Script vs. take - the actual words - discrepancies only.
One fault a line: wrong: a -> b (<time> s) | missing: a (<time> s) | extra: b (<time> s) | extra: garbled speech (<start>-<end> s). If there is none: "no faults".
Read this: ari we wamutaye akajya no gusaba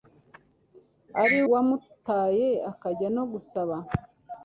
missing: we (1.4 s)